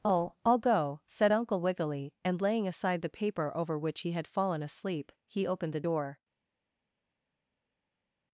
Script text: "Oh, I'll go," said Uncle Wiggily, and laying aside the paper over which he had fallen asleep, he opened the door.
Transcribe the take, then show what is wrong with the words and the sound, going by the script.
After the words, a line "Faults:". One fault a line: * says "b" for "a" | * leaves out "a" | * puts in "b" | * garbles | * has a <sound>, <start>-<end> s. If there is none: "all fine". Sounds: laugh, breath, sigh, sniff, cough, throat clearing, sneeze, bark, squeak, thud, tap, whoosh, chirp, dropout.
"Oh, I'll go," said Uncle Wiggily, and laying aside the paper over which he had fallen asleep, he opened the door.
Faults:
all fine